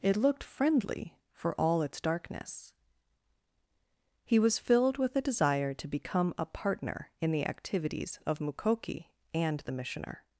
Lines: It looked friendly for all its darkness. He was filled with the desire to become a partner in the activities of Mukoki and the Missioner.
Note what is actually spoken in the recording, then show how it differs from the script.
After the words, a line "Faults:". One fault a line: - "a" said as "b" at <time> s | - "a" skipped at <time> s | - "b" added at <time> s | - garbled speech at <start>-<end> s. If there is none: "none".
It looked friendly for all its darkness. He was filled with the desire to become a partner in the activities of Mukoki and the Missioner.
Faults:
none